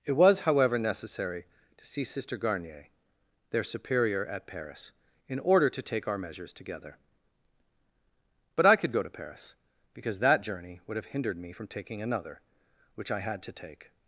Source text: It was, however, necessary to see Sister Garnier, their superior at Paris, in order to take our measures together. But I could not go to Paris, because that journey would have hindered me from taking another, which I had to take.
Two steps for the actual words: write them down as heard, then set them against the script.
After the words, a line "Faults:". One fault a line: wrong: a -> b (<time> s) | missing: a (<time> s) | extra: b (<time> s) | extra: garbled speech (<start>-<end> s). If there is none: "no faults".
It was, however, necessary to see Sister Garnier, their superior at Paris, in order to take our measures together. But I could go to Paris, because that journey would have hindered me from taking another, which I had to take.
Faults:
missing: not (8.9 s)